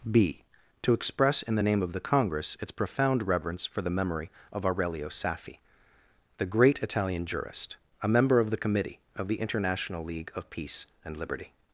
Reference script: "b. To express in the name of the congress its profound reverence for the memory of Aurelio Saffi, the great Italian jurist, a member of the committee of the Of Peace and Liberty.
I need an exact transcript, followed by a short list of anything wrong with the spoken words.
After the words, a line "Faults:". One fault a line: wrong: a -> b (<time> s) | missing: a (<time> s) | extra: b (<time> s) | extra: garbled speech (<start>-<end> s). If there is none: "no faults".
"b. To express in the name of the congress its profound reverence for the memory of Aurelio Saffi, the great Italian jurist, a member of the committee of the International League of Peace and Liberty.
Faults:
extra: International League (9.4 s)